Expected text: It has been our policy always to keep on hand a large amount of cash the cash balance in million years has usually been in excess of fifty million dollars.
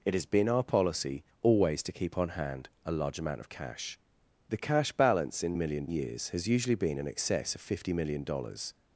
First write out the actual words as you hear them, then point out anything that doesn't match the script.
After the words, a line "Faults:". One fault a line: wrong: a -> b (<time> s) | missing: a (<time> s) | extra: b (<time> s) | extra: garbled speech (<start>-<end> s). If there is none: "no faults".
It has been our policy always to keep on hand a large amount of cash the cash balance in million years has usually been in excess of fifty million dollars.
Faults:
no faults